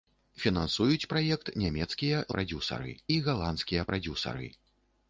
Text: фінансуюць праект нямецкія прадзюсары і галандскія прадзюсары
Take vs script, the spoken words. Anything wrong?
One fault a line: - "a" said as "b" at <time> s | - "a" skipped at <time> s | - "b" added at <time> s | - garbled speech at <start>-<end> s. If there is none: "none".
none